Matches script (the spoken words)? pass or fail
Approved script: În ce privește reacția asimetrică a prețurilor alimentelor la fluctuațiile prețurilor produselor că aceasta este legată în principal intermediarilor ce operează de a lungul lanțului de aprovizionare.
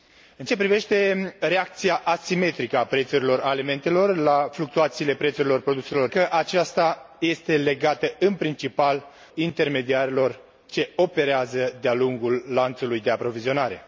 pass